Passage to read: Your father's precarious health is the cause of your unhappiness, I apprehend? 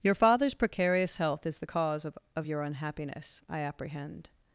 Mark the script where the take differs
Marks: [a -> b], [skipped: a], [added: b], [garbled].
Your father's precarious health is the cause of [added: of] your unhappiness, I apprehend?